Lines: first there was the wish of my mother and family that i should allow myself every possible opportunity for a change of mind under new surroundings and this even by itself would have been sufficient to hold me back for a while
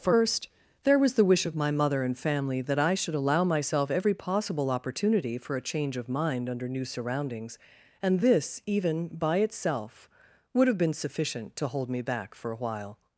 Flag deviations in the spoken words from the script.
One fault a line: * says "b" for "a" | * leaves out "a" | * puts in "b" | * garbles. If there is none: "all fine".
all fine